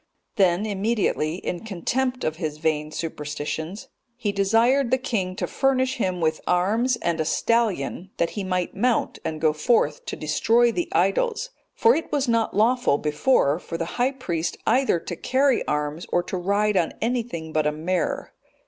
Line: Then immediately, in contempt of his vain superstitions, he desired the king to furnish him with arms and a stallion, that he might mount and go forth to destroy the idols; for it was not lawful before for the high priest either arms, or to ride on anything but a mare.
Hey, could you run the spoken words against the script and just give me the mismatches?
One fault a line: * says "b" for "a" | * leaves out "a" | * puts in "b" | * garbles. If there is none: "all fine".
* puts in "to carry"